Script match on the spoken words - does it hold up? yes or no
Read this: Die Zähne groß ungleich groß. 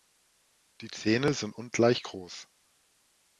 no